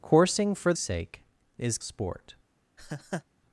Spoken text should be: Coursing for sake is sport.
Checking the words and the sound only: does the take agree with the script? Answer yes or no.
no